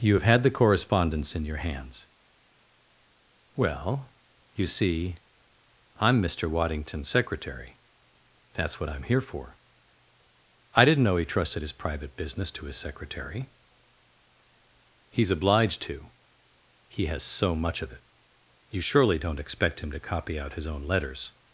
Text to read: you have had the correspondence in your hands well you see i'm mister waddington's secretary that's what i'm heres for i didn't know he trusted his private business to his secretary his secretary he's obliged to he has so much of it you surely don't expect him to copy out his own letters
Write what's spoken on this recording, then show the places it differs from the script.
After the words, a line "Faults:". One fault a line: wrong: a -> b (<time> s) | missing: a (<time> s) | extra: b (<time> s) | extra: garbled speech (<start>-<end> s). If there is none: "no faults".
you have had the correspondence in your hands well you see i'm mister waddington's secretary that's what i'm here for i didn't know he trusted his private business to his secretary he's obliged to he has so much of it you surely don't expect him to copy out his own letters
Faults:
wrong: heres -> here (9.0 s)
missing: his secretary (13.5 s)